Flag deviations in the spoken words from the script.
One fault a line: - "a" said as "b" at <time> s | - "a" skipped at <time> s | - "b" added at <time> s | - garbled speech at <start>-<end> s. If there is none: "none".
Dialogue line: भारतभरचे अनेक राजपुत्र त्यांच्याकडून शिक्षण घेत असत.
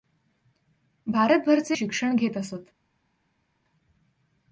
- "अनेक राजपुत्र त्यांच्याकडून" skipped at 1.8 s